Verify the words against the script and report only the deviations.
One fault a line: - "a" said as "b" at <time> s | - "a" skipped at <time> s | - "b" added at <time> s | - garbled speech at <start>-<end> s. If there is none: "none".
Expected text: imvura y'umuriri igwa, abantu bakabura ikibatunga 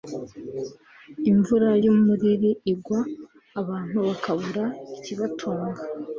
none